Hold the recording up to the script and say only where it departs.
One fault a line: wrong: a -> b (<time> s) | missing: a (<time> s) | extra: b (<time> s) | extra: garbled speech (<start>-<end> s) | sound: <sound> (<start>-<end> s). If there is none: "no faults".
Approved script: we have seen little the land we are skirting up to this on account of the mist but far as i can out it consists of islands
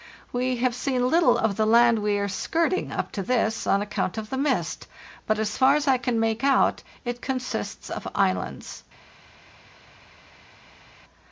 extra: of (1.4 s)
extra: as (5.4 s)
extra: make (6.2 s)